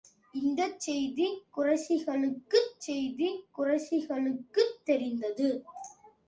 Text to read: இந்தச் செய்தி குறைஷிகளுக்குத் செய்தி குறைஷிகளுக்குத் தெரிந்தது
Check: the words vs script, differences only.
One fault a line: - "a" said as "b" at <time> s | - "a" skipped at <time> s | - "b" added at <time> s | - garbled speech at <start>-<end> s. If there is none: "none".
none